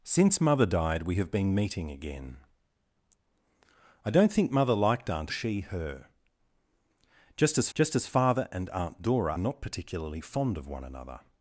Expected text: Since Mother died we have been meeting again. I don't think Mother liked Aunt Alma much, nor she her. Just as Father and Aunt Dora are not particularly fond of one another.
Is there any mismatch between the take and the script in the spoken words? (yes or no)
yes